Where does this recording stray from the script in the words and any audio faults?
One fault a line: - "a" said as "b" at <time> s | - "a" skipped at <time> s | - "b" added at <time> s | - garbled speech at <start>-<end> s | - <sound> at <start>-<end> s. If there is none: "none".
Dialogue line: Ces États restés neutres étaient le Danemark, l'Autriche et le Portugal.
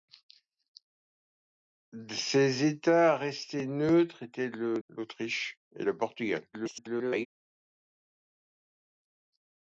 - "Danemark" skipped at 4.8 s
- garbled speech at 6.5-7.3 s